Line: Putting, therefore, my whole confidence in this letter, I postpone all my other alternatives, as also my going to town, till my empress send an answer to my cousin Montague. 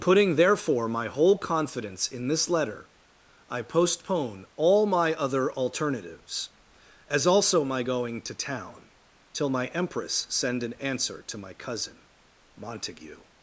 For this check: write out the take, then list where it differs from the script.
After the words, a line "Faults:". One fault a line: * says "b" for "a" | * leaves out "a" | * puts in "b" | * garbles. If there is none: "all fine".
Putting, therefore, my whole confidence in this letter, I postpone all my other alternatives, as also my going to town, till my empress send an answer to my cousin Montague.
Faults:
all fine